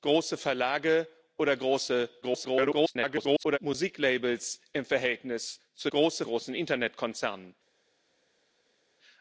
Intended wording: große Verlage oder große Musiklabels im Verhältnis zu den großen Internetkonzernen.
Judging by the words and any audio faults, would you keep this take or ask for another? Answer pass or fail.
fail